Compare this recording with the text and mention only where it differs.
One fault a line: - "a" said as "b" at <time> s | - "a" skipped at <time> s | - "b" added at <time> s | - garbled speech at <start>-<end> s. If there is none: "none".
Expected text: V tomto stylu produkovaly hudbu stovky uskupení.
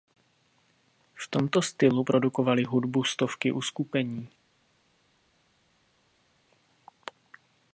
none